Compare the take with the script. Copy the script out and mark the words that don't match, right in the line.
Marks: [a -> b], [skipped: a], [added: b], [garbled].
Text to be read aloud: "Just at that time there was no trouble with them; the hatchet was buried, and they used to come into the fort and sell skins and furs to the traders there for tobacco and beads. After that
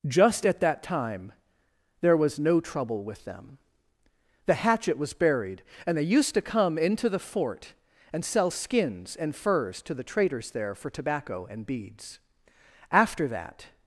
"Just at that time there was no trouble with them; the hatchet was buried, and they used to come into the fort and sell skins and furs to the traders there for tobacco and beads. After that